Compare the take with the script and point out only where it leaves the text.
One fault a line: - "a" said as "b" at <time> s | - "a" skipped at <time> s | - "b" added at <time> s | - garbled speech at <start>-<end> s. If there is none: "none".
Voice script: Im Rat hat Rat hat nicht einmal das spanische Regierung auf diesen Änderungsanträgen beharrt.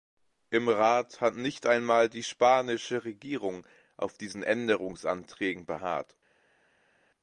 - "Rat hat" skipped at 1.4 s
- "das" said as "die" at 2.1 s